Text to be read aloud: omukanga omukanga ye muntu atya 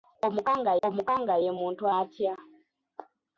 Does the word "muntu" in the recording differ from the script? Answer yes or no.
no